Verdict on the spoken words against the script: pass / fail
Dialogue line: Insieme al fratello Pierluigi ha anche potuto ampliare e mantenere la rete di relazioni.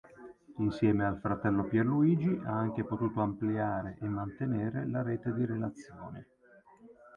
pass